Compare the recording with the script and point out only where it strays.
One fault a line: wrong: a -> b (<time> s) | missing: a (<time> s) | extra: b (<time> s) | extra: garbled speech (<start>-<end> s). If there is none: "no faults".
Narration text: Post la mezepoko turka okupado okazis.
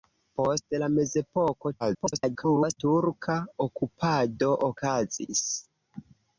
extra: garbled speech (1.8-2.8 s)